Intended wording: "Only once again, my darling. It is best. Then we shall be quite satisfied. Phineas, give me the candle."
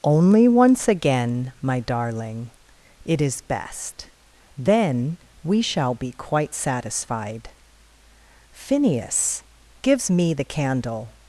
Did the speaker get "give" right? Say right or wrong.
wrong